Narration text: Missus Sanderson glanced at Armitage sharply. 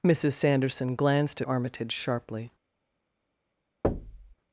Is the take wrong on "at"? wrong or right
wrong